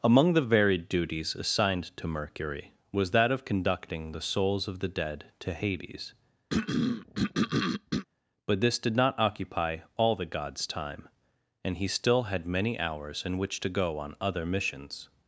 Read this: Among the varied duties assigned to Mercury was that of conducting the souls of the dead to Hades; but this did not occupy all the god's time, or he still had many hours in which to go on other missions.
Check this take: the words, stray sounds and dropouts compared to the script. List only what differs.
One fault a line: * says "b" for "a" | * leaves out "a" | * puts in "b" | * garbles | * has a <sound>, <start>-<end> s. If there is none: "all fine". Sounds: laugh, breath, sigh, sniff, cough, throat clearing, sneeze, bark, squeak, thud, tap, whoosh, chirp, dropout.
* has a throat clearing, 6.5-8.1 s
* says "and" for "or"